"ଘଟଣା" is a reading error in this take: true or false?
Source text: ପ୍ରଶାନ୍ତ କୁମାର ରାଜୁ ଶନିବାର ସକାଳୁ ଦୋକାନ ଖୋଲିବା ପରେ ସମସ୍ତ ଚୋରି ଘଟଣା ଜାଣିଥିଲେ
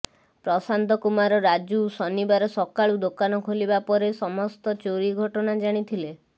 false